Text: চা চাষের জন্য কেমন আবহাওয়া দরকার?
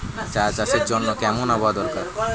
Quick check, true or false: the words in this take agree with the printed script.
true